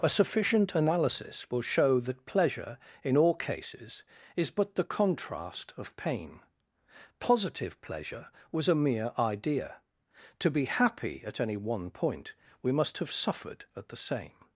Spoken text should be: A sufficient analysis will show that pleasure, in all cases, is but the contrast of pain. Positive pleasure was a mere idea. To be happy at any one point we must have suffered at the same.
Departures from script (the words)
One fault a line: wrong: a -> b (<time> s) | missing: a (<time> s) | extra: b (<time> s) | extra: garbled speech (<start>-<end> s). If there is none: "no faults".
no faults